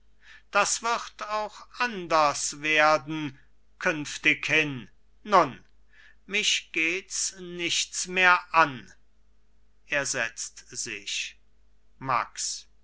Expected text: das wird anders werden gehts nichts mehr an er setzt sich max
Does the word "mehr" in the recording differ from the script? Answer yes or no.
no